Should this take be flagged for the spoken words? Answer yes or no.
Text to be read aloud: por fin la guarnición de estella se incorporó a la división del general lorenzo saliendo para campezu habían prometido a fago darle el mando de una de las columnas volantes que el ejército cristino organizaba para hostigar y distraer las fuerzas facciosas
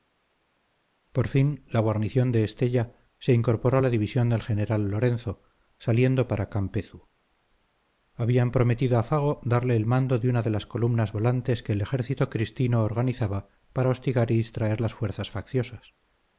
no